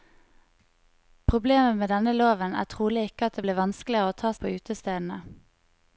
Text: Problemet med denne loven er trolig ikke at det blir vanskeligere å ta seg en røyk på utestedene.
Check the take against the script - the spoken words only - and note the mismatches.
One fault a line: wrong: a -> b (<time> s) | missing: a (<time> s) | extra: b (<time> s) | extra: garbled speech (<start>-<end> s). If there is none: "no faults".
missing: seg en røyk (4.3 s)